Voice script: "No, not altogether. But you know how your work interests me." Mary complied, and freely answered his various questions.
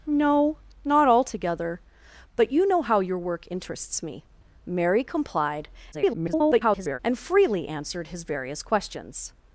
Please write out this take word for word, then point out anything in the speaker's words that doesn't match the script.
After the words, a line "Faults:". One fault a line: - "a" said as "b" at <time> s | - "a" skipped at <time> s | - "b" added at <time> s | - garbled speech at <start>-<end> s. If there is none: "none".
"No, not altogether. But you know how your work interests me." Mary complied, [garbled] and freely answered his various questions.
Faults:
- garbled speech at 5.9-7.0 s